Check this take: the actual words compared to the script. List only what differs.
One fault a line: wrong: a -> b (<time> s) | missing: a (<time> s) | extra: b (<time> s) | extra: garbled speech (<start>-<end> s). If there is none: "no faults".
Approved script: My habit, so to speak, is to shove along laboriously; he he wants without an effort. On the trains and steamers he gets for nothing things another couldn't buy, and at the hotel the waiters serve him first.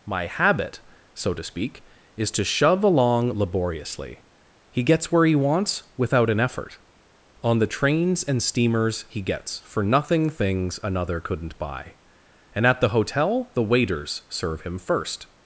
extra: gets where (4.8 s)